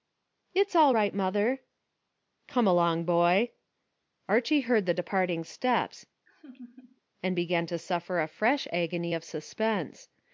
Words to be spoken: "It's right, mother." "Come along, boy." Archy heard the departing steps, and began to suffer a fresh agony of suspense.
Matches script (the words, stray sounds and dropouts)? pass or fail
fail